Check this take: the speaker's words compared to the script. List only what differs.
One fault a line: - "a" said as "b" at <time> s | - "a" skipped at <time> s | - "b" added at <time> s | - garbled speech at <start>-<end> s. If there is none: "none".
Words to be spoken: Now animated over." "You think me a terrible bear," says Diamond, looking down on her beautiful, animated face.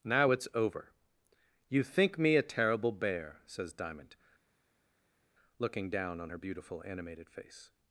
- "animated" said as "it's" at 0.3 s